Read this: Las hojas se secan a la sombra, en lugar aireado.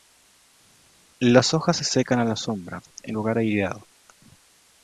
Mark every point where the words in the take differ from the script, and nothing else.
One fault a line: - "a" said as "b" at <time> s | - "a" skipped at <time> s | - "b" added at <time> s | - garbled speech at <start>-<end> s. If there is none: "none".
none